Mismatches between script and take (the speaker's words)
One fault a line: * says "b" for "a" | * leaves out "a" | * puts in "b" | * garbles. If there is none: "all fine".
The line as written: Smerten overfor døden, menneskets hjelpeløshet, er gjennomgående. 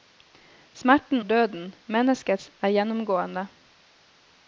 * leaves out "overfor"
* leaves out "hjelpeløshet"